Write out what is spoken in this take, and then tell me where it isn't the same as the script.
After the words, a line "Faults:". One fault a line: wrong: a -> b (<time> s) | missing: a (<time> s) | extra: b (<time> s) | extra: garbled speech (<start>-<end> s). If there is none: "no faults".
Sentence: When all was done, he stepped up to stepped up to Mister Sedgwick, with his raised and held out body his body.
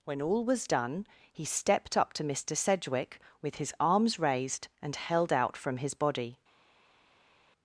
When all was done, he stepped up to Mister Sedgwick, with his arms raised and held out from his body.
Faults:
missing: stepped up to (2.2 s)
extra: arms (3.8 s)
wrong: body -> from (5.6 s)